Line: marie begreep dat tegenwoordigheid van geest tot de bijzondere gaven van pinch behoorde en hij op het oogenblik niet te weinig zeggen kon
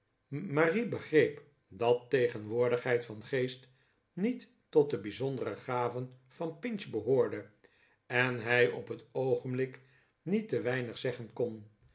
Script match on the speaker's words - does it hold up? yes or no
no